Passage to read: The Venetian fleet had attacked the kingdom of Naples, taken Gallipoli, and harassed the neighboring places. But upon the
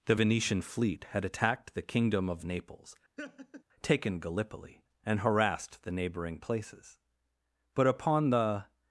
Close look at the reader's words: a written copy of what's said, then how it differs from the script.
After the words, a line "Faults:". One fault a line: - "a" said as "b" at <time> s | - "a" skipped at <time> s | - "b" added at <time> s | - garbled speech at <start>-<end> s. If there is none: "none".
The Venetian fleet had attacked the kingdom of Naples, taken Gallipoli, and harassed the neighboring places. But upon the
Faults:
none